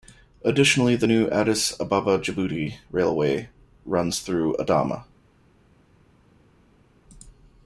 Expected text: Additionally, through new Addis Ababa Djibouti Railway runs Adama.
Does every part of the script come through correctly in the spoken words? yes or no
no